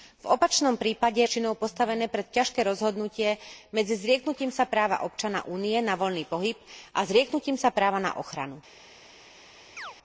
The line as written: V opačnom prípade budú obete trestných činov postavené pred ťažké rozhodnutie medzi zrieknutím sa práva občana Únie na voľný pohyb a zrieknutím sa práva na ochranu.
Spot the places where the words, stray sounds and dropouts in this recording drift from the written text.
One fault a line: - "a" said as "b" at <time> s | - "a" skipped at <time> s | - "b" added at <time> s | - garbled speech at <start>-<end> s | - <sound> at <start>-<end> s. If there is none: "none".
- "budú obete trestných" skipped at 1.2 s
- chirp at 9.8-10.0 s